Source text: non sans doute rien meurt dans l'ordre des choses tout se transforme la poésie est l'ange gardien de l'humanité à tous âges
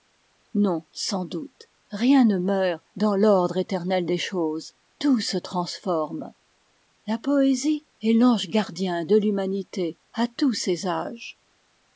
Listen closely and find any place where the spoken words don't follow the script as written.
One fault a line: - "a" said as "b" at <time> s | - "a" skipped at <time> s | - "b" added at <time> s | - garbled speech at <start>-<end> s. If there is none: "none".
- "ne" added at 2.2 s
- "éternel" added at 3.6 s
- "ses" added at 10.5 s